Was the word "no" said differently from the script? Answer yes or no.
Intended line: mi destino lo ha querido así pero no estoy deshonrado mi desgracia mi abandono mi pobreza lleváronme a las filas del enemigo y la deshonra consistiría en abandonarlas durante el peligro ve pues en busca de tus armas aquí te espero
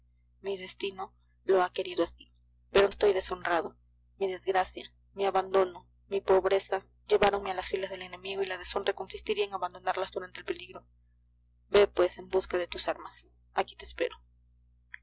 yes